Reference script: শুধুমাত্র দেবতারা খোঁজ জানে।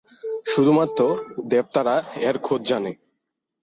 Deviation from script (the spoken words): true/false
true